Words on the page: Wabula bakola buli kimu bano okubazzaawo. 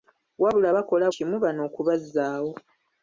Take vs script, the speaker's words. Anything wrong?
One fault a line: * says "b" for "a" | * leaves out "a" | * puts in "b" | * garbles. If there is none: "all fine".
* leaves out "buli"